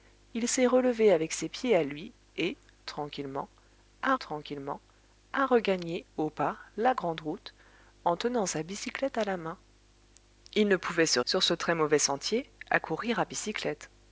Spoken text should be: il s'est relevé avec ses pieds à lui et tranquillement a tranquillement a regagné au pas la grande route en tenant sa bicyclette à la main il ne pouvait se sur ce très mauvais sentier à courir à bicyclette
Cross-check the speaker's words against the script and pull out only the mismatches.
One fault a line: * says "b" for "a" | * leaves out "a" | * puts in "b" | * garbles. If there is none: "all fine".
all fine